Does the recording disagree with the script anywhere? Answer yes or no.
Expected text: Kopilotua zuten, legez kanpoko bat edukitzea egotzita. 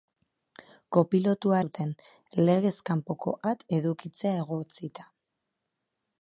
no